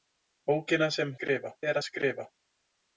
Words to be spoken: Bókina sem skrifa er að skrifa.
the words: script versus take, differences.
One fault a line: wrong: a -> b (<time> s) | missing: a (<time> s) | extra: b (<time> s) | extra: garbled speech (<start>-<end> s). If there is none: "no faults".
no faults